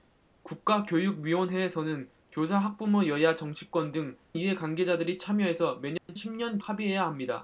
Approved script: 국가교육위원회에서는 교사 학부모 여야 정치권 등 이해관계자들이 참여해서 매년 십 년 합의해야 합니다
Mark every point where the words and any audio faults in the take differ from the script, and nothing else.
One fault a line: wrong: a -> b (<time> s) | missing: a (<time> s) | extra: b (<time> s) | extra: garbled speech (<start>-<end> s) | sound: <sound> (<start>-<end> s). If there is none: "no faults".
sound: dropout (6.0-6.1 s)